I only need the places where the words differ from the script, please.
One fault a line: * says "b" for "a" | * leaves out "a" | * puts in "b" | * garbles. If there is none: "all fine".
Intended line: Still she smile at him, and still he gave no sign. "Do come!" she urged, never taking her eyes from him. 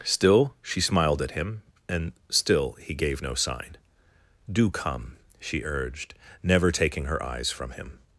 * says "smiled" for "smile"